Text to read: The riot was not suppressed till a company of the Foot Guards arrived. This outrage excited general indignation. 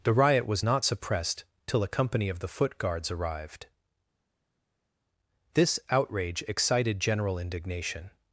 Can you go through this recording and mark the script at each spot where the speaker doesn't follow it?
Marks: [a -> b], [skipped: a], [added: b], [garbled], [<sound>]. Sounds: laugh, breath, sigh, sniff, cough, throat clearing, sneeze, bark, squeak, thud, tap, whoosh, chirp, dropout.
The riot was not suppressed till a company of the Foot Guards arrived. This outrage excited general indignation.